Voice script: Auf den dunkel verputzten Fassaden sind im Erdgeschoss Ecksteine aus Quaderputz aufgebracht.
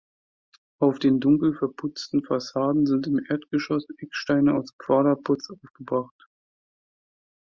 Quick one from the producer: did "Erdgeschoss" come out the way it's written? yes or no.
yes